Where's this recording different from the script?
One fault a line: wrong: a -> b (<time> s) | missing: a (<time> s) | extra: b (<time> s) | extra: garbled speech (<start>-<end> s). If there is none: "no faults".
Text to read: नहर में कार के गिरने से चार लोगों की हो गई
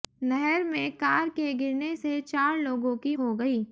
no faults